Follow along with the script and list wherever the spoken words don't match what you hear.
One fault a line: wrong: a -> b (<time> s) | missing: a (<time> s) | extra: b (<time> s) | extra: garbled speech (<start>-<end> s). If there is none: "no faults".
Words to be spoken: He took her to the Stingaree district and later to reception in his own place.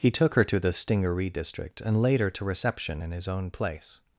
no faults